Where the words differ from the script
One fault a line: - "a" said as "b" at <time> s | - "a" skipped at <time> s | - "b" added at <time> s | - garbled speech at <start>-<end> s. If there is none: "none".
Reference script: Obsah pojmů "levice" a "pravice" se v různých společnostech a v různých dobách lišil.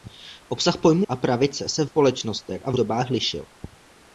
- "levice" skipped at 1.1 s
- "různých" skipped at 1.9 s
- "různých" skipped at 2.8 s